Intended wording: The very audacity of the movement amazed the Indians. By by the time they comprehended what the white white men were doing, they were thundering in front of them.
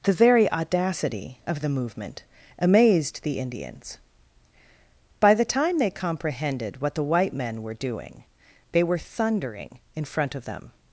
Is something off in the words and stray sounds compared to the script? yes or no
yes